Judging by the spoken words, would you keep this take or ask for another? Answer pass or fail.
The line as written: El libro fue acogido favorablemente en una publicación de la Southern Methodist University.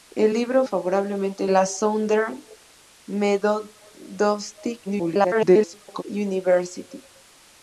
fail